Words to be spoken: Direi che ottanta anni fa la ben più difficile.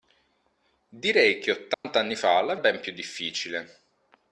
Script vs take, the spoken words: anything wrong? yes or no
no